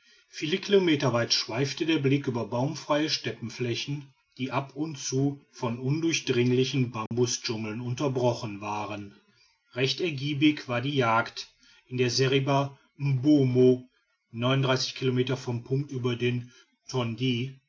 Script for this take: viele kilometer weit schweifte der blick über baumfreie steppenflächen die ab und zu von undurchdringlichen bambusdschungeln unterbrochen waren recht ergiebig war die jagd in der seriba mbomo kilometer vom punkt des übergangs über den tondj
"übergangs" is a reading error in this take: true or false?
true